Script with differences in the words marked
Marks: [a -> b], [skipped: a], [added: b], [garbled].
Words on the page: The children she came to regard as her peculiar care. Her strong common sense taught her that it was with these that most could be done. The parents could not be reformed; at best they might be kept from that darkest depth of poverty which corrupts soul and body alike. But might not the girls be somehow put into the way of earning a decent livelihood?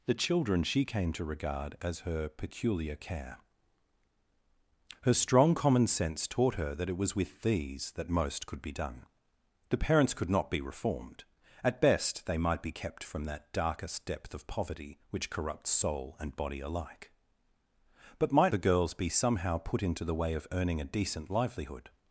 The children she came to regard as her peculiar care. Her strong common sense taught her that it was with these that most could be done. The parents could not be reformed; at best they might be kept from that darkest depth of poverty which corrupts soul and body alike. But might [skipped: not] the girls be somehow put into the way of earning a decent livelihood?